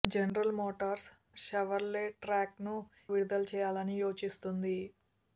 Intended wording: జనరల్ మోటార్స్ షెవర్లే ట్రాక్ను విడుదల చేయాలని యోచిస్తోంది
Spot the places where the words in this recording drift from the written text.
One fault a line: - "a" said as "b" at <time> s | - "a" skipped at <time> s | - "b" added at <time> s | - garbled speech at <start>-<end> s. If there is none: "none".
none